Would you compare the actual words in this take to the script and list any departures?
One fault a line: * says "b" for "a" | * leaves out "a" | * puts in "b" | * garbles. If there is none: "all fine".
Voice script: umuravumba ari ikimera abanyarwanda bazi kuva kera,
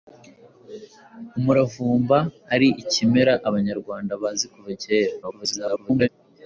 * garbles